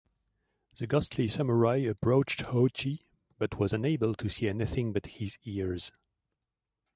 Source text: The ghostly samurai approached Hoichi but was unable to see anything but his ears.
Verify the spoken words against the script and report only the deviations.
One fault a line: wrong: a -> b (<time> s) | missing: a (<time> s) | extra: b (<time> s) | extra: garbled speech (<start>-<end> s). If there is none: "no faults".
no faults